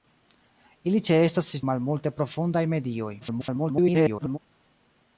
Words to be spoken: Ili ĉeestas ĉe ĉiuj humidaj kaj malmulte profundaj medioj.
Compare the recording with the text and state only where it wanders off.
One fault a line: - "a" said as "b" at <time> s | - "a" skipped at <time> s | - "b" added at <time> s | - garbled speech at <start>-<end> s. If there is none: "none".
- "ĉiuj humidaj kaj" skipped at 1.6 s
- garbled speech at 3.2-4.4 s